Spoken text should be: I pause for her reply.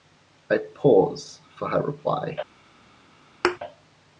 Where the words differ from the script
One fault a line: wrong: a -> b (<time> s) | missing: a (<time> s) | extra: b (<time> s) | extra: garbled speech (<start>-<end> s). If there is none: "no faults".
no faults